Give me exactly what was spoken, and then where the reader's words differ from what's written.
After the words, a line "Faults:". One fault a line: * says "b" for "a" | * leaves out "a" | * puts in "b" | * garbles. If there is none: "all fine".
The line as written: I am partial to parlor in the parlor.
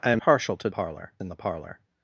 I am partial to parlor in the parlor.
Faults:
all fine